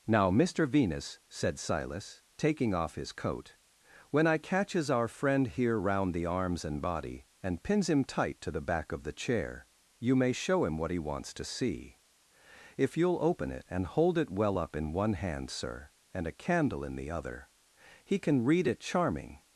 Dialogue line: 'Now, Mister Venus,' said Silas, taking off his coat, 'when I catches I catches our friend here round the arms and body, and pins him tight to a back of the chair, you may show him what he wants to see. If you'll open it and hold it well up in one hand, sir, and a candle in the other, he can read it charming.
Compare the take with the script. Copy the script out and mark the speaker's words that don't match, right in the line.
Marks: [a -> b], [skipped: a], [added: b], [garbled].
'Now, Mister Venus,' said Silas, taking off his coat, 'when I catches [skipped: I catches] our friend here round the arms and body, and pins him tight to [a -> the] back of the chair, you may show him what he wants to see. If you'll open it and hold it well up in one hand, sir, and a candle in the other, he can read it charming.